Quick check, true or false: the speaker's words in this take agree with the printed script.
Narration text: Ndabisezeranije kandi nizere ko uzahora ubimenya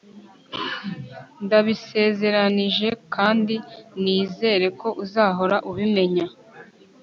true